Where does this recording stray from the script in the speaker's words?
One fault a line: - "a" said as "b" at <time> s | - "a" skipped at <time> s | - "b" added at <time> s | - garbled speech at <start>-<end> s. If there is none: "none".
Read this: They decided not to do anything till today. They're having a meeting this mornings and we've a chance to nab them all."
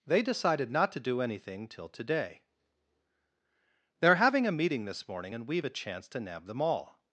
- "mornings" said as "morning" at 5.1 s